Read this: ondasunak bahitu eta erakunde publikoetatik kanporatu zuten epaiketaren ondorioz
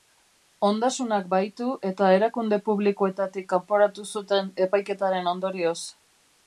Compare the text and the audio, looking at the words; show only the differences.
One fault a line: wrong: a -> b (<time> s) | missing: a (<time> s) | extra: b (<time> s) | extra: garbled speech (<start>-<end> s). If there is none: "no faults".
no faults